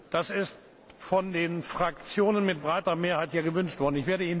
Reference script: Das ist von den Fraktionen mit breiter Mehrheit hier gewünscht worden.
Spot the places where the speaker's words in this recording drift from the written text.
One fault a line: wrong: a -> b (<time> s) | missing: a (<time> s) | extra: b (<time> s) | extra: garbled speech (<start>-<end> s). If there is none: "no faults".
no faults